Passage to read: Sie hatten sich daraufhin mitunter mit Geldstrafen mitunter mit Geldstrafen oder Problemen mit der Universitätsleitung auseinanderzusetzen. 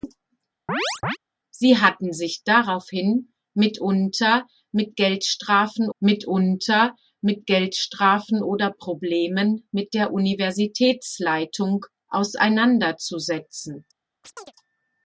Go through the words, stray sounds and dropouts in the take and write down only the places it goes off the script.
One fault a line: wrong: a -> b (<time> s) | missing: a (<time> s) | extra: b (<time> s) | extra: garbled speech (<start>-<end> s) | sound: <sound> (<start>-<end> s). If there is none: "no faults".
sound: chirp (0.7-1.2 s)
sound: chirp (14.2-14.5 s)